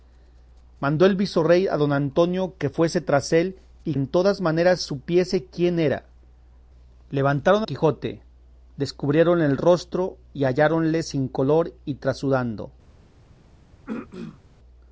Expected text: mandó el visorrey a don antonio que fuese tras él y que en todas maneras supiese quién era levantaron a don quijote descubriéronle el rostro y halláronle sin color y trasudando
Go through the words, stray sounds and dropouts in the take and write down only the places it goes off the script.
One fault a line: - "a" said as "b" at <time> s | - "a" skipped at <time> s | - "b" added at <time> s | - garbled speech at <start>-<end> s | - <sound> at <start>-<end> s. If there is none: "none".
- "que" skipped at 3.9 s
- "don" skipped at 7.7 s
- throat clearing at 13.9-14.4 s